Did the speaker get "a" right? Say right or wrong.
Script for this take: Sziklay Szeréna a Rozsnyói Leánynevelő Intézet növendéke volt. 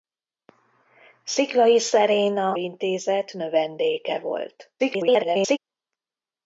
wrong